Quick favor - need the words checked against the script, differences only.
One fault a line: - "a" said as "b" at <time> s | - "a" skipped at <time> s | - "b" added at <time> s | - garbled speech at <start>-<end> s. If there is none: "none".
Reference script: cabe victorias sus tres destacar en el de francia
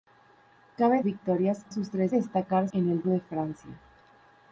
none